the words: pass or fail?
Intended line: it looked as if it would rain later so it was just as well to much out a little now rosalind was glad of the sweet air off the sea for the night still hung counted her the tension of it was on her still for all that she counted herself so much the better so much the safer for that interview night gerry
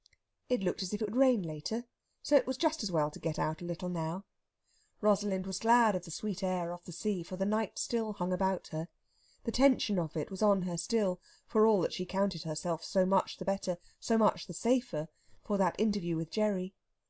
fail